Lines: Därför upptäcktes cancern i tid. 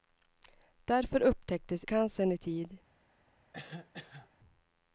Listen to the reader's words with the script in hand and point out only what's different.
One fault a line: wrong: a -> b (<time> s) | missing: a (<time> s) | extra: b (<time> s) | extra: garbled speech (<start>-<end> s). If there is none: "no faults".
no faults